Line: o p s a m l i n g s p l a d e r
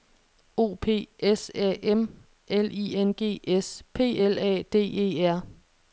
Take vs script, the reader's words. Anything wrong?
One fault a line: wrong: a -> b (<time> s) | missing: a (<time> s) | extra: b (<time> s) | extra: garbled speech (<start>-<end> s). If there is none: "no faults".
no faults